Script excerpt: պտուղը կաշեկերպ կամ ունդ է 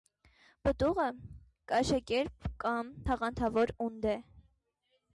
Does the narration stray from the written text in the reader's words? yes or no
yes